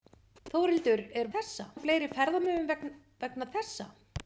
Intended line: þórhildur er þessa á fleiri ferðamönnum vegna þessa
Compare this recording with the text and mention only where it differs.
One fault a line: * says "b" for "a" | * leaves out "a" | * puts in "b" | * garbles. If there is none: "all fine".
all fine